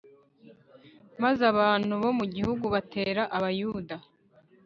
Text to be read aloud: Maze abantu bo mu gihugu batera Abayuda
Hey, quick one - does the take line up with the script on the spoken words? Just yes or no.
yes